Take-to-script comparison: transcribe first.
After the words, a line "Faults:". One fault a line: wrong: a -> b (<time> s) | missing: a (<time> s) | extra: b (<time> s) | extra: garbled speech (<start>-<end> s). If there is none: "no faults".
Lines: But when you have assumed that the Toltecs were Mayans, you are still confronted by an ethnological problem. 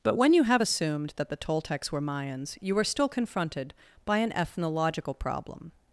But when you have assumed that the Toltecs were Mayans, you are still confronted by an ethnological problem.
Faults:
no faults